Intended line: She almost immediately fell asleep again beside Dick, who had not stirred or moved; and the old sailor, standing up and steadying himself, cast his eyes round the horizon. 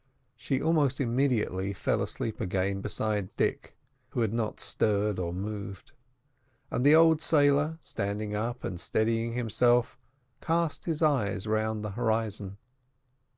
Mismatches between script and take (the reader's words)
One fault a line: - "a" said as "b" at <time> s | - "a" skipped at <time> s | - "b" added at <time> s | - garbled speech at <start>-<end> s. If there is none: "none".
none